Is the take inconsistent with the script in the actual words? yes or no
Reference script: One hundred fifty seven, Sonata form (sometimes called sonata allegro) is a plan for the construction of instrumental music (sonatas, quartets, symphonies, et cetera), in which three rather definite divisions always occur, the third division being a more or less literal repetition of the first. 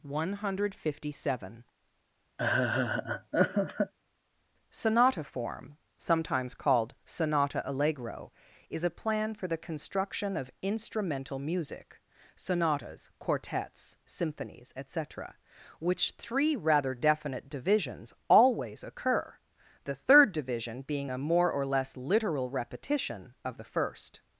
yes